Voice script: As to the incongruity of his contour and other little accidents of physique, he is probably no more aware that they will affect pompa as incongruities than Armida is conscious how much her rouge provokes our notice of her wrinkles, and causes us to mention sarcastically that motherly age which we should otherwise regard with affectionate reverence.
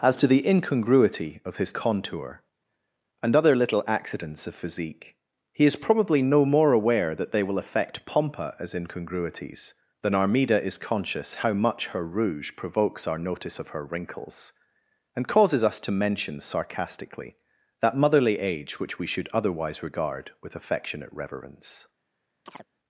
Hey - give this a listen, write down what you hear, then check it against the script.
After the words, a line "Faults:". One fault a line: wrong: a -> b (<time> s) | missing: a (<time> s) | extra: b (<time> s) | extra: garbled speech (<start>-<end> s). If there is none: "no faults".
As to the incongruity of his contour and other little accidents of physique, he is probably no more aware that they will affect pompa as incongruities than Armida is conscious how much her rouge provokes our notice of her wrinkles, and causes us to mention sarcastically that motherly age which we should otherwise regard with affectionate reverence.
Faults:
no faults